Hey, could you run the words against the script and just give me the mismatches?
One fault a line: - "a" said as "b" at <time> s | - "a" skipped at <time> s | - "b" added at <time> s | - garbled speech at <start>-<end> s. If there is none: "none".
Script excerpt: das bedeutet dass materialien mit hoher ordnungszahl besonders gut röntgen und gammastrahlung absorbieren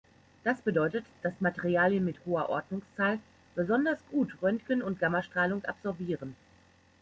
none